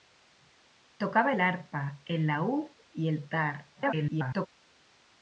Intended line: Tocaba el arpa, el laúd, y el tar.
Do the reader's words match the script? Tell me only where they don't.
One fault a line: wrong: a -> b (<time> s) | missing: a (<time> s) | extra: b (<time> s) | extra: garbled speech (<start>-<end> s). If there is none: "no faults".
extra: garbled speech (3.7-4.5 s)